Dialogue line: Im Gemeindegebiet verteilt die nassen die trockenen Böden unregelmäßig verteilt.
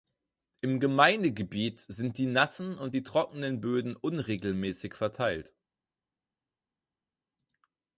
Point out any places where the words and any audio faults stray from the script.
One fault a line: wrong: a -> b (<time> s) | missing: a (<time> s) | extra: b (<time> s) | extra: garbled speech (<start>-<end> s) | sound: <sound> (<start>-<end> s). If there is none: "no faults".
wrong: verteilt -> sind (1.9 s)
extra: und (2.8 s)